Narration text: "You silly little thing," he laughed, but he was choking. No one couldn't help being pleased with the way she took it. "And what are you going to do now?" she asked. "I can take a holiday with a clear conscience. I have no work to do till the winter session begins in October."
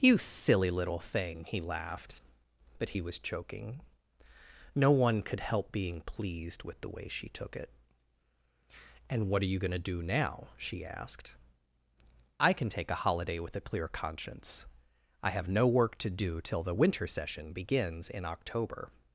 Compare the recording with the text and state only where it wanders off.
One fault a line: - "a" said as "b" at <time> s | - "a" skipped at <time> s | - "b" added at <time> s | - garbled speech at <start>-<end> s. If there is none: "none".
- "couldn't" said as "could" at 5.2 s